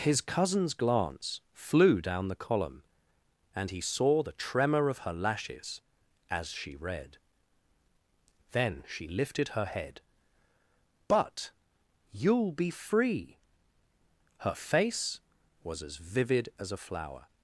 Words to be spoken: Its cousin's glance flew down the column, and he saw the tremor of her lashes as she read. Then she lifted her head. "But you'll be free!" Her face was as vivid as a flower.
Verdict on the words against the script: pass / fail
fail